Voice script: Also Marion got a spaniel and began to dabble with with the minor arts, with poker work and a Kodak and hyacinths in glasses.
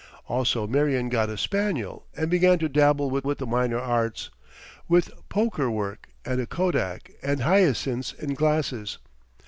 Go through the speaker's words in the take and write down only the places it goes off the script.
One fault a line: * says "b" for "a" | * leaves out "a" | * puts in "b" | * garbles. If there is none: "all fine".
all fine